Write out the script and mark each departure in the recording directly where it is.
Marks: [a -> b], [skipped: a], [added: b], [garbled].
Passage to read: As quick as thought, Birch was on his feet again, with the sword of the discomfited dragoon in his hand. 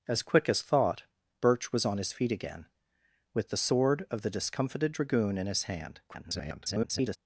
As quick as thought, Birch was on his feet again, with the sword of the discomfited dragoon in his hand. [garbled]